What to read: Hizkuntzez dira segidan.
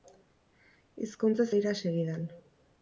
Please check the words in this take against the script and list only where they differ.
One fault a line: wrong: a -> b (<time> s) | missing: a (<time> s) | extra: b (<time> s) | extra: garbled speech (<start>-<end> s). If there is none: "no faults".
no faults